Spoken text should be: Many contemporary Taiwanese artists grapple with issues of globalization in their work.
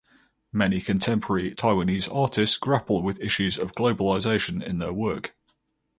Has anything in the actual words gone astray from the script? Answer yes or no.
no